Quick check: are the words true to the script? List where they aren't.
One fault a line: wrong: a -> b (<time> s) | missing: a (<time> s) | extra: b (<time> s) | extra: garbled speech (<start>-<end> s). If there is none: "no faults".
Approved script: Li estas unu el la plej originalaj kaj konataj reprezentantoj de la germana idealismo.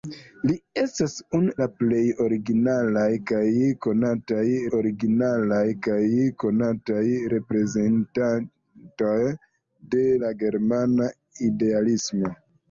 missing: el (1.5 s)
extra: originalaj kaj konataj (4.8 s)